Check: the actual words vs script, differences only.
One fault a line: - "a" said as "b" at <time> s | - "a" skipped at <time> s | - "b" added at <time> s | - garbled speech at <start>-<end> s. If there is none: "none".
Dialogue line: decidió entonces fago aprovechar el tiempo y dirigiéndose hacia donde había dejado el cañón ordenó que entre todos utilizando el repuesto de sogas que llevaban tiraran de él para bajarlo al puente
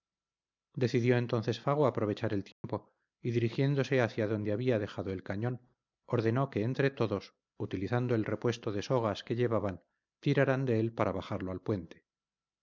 none